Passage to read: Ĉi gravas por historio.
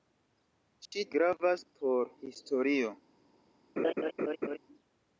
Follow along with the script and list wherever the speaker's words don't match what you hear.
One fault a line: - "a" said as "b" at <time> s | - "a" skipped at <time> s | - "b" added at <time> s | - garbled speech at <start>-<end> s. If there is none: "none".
none